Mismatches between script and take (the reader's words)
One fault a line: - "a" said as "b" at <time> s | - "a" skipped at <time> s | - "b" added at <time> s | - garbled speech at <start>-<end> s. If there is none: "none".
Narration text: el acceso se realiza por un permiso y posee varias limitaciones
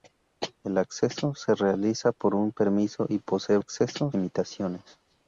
- "varias" said as "acceso" at 3.6 s